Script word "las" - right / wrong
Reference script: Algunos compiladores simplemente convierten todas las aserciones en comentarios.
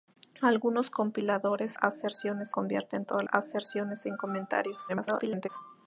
wrong